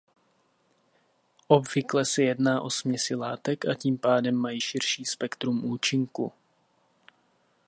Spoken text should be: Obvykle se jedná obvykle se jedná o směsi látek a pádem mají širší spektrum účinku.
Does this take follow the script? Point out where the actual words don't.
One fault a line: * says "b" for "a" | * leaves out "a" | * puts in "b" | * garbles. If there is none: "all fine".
* leaves out "obvykle se jedná"
* puts in "tím"